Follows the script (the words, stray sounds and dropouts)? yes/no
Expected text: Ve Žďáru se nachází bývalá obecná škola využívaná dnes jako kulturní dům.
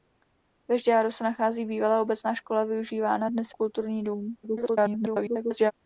no